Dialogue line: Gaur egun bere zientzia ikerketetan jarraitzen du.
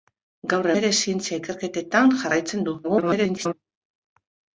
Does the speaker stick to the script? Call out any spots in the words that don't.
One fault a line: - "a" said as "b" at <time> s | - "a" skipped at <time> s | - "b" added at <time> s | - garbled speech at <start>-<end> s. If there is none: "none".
- "egun" skipped at 0.7 s
- garbled speech at 2.8-3.5 s